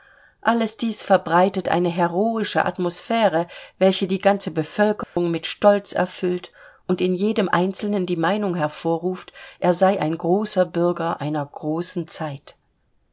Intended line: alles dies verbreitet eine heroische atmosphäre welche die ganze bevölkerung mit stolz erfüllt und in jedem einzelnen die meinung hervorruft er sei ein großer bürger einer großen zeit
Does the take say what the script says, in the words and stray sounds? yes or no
no